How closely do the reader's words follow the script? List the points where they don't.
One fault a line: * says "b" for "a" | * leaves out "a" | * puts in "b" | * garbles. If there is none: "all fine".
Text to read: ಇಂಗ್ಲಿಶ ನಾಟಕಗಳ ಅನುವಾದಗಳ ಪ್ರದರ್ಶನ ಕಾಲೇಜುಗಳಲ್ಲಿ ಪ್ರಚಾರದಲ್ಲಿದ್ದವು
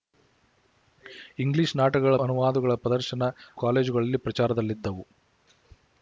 all fine